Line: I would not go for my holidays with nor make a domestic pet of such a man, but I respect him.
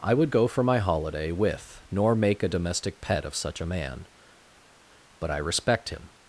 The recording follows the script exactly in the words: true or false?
false